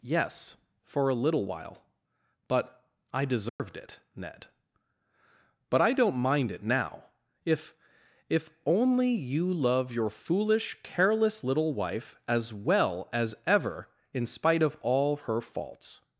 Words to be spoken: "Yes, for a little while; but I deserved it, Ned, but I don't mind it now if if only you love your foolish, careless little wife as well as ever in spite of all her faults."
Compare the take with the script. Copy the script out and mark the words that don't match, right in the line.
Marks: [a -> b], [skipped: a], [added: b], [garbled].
"Yes, for a little while; but I deserved it, Ned, but I don't mind it now if if only you love your foolish, careless little wife as well as ever in spite of all her faults."